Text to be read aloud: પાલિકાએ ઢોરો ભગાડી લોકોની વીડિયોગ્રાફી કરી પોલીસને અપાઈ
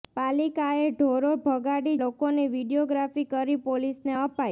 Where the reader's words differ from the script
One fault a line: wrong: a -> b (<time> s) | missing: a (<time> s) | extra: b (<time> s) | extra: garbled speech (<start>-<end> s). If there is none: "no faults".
no faults